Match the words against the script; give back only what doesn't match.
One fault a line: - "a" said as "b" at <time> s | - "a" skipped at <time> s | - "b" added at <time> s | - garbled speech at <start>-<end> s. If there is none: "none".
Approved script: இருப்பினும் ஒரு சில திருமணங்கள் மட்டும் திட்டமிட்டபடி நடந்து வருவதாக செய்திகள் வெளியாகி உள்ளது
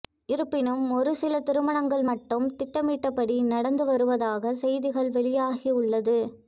none